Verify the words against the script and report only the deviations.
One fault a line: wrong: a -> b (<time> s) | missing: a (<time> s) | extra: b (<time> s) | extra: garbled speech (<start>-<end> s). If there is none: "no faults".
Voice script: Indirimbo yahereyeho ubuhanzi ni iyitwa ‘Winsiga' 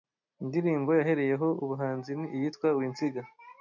no faults